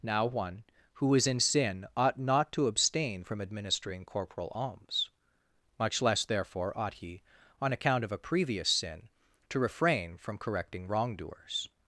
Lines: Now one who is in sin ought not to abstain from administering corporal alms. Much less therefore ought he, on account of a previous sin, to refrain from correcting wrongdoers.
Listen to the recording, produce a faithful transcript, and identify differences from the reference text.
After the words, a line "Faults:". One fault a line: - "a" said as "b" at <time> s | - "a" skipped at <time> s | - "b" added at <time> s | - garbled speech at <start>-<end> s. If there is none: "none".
Now one who is in sin ought not to abstain from administering corporal alms. Much less therefore ought he, on account of a previous sin, to refrain from correcting wrongdoers.
Faults:
none